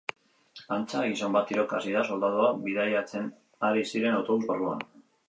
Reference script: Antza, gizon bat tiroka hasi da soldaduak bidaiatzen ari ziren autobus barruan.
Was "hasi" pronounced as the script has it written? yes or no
yes